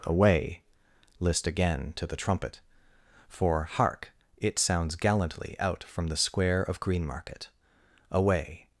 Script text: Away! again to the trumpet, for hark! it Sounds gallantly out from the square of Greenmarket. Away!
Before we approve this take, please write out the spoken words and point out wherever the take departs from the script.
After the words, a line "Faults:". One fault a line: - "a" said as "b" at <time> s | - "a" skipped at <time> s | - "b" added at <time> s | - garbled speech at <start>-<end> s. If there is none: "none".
Away! list again to the trumpet, for hark! it Sounds gallantly out from the square of Greenmarket. Away!
Faults:
- "list" added at 1.2 s